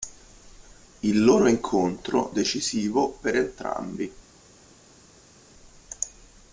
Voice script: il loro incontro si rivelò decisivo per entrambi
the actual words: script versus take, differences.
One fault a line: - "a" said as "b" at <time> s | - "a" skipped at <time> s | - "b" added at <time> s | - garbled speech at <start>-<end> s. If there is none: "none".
- "si rivelò" skipped at 2.3 s